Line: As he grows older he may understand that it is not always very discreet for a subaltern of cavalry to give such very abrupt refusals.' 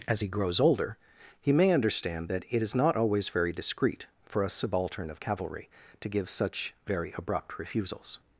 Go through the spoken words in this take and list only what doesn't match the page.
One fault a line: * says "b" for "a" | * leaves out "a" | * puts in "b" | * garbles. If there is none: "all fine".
all fine